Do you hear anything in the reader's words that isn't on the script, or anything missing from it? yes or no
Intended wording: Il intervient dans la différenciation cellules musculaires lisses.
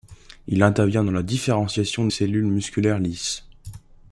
no